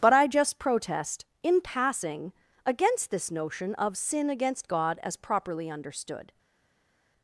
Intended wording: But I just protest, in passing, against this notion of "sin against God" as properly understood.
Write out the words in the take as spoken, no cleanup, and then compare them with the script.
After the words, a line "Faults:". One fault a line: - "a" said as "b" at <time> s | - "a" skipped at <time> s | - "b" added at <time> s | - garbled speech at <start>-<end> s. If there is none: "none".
But I just protest, in passing, against this notion of "sin against God" as properly understood.
Faults:
none